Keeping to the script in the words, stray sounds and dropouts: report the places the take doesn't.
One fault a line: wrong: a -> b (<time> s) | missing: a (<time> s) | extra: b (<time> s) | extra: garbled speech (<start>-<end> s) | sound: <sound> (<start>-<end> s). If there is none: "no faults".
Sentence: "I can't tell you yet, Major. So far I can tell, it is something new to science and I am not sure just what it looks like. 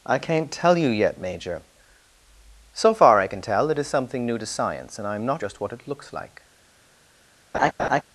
missing: sure (5.4 s)
sound: laugh (7.5-8.0 s)